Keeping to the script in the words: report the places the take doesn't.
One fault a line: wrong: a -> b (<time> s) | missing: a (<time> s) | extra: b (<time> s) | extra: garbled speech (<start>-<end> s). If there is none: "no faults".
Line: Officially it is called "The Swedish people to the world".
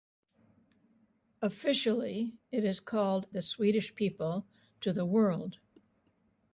no faults